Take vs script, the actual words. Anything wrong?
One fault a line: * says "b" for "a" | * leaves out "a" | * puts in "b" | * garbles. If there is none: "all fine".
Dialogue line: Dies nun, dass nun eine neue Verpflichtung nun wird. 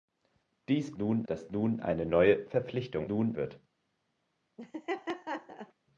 all fine